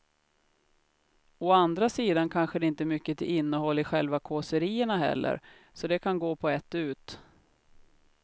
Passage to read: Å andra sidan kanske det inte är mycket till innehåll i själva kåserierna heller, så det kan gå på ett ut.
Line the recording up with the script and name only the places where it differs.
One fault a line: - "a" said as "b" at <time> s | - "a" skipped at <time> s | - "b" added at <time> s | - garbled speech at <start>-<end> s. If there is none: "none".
none